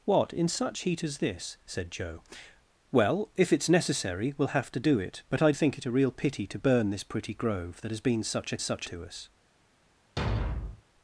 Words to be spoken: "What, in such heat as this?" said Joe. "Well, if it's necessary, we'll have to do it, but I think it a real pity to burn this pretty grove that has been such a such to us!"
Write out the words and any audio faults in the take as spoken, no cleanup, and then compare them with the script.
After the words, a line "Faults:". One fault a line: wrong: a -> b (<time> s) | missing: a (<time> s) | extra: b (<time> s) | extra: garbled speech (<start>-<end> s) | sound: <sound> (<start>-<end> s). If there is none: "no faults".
"What, in such heat as this?" said Joe. "Well, if it's necessary, we'll have to do it, but I think it a real pity to burn this pretty grove that has been such a such to us!"
Faults:
sound: thud (10.2-10.8 s)